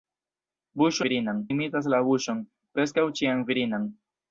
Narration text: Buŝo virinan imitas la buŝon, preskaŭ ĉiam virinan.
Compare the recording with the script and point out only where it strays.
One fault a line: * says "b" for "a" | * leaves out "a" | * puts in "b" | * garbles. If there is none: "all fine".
all fine